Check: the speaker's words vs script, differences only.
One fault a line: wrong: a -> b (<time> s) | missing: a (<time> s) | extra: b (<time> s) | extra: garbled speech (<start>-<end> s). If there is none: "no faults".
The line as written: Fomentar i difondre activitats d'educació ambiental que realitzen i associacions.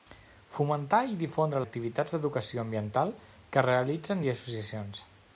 no faults